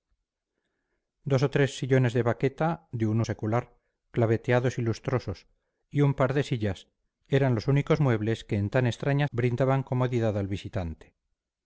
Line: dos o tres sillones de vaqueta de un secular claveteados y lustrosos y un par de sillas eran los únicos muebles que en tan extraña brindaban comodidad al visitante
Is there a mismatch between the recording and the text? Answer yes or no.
no